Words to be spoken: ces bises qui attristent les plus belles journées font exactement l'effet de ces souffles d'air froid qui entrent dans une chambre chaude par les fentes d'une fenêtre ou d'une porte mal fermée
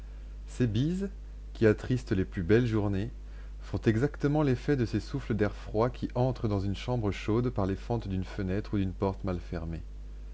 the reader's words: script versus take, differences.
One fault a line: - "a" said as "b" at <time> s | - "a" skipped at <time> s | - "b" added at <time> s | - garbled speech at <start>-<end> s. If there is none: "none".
none